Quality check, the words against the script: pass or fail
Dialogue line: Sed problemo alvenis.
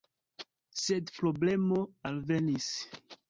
pass